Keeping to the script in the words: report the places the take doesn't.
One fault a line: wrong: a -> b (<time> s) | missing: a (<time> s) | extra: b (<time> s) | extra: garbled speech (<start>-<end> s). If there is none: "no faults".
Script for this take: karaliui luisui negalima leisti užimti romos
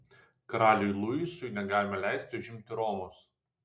no faults